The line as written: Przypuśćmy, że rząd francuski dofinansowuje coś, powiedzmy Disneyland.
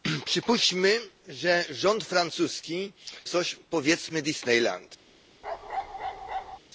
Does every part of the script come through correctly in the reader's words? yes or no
no